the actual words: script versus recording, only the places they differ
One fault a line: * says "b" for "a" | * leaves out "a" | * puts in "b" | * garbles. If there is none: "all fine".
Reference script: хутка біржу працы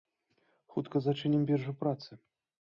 * puts in "зачынім"